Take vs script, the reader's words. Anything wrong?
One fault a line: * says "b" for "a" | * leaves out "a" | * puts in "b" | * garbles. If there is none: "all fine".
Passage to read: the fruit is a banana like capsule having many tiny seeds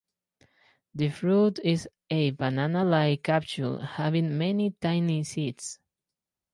all fine